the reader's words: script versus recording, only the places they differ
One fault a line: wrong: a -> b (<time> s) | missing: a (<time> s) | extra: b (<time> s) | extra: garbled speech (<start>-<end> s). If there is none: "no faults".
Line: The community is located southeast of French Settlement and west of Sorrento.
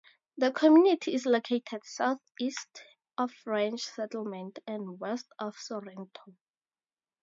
no faults